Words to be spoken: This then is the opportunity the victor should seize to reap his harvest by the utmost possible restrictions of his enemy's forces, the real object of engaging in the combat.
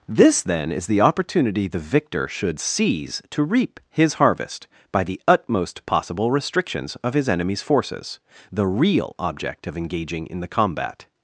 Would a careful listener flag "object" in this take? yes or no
no